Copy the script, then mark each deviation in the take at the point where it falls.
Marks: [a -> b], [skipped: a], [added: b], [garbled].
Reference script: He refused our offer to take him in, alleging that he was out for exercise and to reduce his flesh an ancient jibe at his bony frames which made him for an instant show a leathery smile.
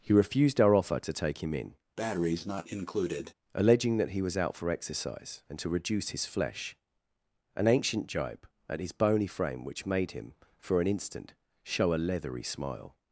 He refused our offer to take him in, alleging that he was out for exercise and to reduce his flesh an ancient jibe at his bony [frames -> frame] which made him for an instant show a leathery smile.